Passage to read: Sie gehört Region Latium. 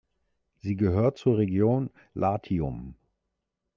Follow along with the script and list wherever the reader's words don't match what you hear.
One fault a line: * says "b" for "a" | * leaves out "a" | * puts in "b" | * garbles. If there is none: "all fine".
* puts in "zur"